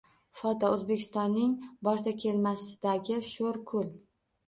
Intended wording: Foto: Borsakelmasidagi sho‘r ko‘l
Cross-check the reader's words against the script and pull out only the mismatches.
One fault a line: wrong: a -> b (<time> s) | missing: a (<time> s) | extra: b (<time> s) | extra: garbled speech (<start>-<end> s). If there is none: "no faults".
extra: O‘zbekistonning (0.7 s)